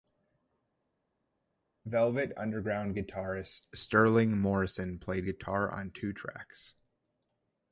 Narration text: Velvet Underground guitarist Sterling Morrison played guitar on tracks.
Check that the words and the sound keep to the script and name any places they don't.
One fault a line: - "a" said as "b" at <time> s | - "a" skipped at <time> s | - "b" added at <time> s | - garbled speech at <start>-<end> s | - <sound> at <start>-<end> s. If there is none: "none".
- "two" added at 5.9 s